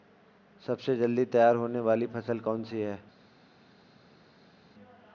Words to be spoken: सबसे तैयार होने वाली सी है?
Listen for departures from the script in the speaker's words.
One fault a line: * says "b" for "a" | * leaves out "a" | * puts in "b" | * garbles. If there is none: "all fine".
* puts in "जल्दी"
* puts in "फसल कौन"